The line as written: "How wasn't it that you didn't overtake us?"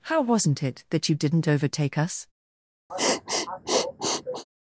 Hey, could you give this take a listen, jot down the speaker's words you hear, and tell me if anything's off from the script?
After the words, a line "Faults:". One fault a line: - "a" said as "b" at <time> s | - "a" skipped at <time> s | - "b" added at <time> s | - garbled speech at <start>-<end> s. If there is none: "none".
"How wasn't it that you didn't overtake us?"
Faults:
none